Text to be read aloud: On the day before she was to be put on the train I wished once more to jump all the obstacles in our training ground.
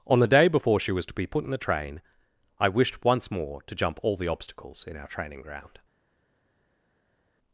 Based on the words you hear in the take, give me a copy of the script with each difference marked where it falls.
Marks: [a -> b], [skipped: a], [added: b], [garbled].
On the day before she was to be put [on -> in] the train I wished once more to jump all the obstacles in our training ground.